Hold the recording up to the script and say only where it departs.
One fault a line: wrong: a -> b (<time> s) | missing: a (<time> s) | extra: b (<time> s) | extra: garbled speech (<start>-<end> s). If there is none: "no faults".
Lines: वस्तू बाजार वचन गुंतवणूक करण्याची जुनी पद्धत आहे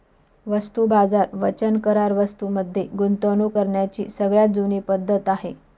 extra: करार वस्तूं मध्ये (1.8 s)
extra: सगळ्यात (4.1 s)